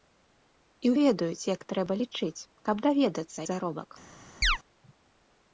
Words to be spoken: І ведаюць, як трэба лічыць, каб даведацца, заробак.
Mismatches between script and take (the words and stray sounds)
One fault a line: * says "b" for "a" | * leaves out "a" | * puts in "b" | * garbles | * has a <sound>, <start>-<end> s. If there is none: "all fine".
* has a chirp, 4.4-4.6 s